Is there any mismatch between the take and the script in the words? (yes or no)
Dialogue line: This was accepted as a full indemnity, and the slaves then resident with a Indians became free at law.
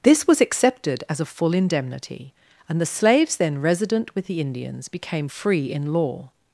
yes